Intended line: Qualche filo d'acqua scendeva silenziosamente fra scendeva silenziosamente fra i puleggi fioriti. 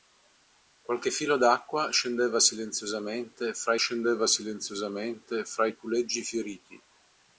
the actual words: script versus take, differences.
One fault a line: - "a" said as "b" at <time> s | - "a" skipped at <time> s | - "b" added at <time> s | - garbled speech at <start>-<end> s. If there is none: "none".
none